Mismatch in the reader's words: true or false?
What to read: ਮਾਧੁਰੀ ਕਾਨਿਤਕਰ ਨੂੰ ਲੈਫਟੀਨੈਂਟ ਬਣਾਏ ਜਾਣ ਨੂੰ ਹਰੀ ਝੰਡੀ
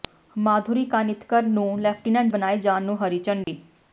false